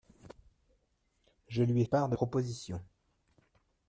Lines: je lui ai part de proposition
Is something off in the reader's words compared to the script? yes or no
no